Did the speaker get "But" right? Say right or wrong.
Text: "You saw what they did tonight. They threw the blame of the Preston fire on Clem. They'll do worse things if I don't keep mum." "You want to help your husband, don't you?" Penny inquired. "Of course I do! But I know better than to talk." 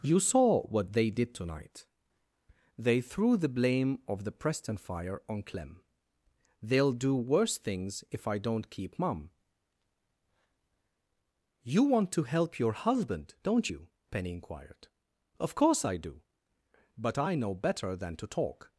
right